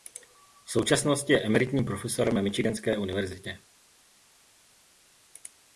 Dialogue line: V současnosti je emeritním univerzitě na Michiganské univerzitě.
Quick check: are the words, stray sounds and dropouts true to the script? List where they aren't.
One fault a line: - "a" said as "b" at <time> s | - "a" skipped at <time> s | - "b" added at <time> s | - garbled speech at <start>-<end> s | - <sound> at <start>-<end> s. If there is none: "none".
- "univerzitě" said as "profesorem" at 1.9 s